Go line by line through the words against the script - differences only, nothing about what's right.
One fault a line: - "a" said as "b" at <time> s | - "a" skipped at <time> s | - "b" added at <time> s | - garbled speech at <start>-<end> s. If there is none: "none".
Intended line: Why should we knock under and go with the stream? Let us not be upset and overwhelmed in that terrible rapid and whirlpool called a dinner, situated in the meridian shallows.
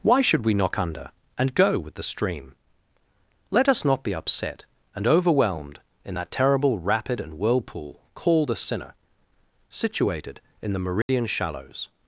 - "dinner" said as "sinner" at 8.6 s